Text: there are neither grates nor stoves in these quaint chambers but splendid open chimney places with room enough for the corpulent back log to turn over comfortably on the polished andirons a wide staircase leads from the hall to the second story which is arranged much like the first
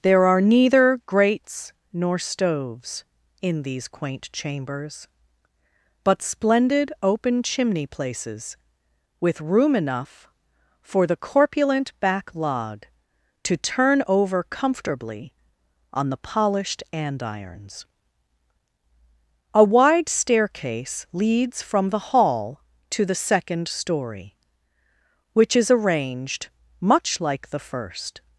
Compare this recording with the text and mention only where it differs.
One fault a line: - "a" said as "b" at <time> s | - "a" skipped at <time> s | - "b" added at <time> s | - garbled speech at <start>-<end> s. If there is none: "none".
none